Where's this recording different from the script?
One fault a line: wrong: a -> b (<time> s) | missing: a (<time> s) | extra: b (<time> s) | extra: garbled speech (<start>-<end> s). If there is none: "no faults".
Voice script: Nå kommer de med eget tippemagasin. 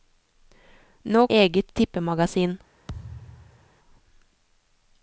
missing: kommer de med (1.3 s)